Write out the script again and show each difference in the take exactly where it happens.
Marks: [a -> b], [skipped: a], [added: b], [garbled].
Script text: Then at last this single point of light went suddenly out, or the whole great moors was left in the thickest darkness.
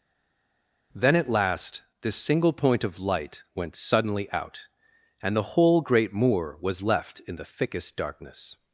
Then at last this single point of light went suddenly out, [or -> and] the whole great [moors -> moor] was left in the thickest darkness.